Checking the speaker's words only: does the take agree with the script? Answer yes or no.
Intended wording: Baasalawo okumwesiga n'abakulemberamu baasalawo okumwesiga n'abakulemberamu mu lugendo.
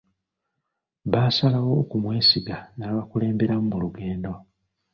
no